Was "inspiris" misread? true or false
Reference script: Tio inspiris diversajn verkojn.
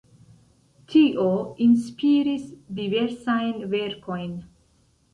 false